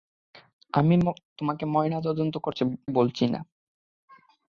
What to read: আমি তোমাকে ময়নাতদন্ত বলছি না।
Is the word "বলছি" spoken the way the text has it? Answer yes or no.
yes